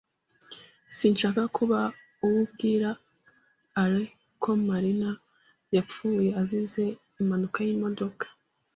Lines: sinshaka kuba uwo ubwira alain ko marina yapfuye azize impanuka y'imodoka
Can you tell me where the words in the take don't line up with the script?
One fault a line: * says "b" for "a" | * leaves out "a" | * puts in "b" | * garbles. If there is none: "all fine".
all fine